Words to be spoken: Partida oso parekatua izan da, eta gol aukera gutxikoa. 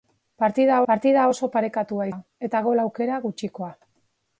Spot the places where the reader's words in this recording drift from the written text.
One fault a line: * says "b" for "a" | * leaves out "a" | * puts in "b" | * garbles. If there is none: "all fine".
* puts in "partida"
* leaves out "izan"